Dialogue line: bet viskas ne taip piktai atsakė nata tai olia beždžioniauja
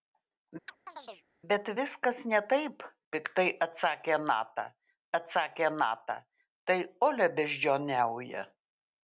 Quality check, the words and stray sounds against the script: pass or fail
fail